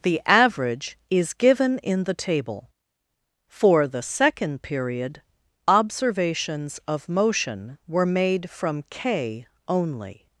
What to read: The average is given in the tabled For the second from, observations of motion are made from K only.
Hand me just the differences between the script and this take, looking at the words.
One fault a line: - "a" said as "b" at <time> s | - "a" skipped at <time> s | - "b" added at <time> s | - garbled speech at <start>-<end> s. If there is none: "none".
- "tabled" said as "table" at 2.1 s
- "from" said as "period" at 4.6 s
- "are" said as "were" at 7.9 s